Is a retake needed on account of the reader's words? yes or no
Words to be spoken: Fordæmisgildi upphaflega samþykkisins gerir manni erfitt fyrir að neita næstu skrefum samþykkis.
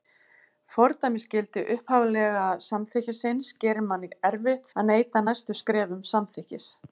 yes